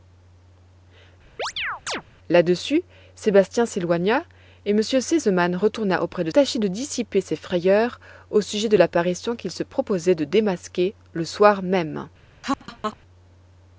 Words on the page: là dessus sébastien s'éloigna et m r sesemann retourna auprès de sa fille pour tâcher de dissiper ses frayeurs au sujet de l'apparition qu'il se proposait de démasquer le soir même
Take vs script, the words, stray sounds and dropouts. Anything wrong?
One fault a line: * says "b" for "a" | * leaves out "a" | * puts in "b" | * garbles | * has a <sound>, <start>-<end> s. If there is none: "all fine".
* has a chirp, 1.4-2.0 s
* leaves out "sa fille pour"
* has a laugh, 12.4-13.0 s